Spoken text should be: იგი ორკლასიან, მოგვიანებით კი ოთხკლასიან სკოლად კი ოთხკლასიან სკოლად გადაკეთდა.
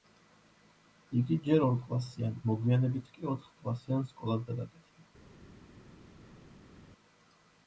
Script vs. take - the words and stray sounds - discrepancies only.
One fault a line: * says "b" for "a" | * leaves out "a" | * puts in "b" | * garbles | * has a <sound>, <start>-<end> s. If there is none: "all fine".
* puts in "ჯერ"
* leaves out "კი ოთხკლასიან სკოლად"